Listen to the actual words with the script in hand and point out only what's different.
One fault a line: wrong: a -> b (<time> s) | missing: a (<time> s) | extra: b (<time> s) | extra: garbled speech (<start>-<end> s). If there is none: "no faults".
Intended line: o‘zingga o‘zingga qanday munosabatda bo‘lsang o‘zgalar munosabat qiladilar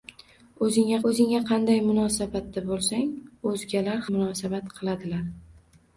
no faults